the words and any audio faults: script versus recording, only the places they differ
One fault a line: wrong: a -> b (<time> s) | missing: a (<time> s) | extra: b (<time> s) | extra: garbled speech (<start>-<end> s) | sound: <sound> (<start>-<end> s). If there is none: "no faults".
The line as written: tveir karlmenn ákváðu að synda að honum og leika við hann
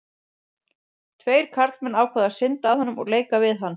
no faults